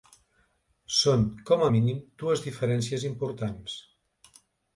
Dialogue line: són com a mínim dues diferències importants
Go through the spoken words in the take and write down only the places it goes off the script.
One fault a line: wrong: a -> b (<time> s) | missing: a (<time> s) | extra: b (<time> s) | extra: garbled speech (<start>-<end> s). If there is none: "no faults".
no faults